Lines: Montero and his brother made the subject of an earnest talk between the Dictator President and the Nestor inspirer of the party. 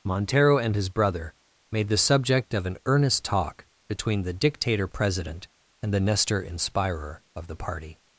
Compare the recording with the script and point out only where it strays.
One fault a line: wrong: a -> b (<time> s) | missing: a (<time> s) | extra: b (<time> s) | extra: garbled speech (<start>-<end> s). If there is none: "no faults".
no faults